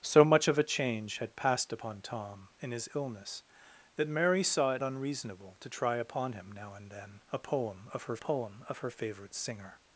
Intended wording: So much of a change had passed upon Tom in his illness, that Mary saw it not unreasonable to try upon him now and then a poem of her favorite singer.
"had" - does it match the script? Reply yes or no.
yes